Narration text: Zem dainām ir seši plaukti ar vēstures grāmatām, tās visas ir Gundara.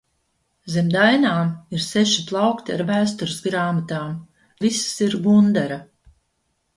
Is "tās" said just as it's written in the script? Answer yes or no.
no